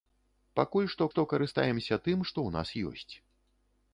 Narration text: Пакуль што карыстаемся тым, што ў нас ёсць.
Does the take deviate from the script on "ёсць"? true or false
false